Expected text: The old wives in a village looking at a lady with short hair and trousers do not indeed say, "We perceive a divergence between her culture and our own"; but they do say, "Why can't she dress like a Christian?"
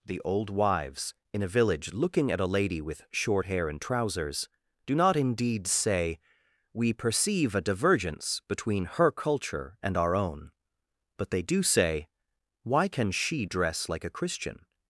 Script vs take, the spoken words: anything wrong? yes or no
yes